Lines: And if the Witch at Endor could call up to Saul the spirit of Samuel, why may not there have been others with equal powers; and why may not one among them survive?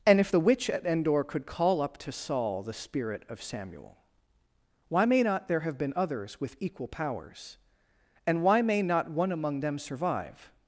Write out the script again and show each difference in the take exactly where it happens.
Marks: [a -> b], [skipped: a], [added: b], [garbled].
And if the Witch at Endor could call up to Saul the spirit of Samuel, why may not there have been others with equal powers; and why may not one among them survive?